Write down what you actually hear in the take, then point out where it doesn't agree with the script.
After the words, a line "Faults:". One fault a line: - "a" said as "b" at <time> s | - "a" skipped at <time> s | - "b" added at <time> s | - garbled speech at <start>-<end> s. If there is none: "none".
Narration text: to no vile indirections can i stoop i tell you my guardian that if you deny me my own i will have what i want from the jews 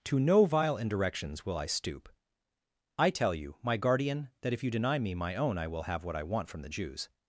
to no vile indirections will i stoop i tell you my guardian that if you deny me my own i will have what i want from the jews
Faults:
- "can" said as "will" at 1.4 s